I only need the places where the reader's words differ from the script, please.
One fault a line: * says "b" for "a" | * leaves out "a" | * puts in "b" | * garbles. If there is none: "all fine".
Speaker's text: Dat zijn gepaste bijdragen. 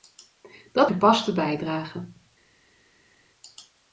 * leaves out "zijn"